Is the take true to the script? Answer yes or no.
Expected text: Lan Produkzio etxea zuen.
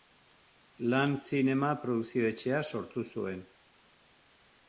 no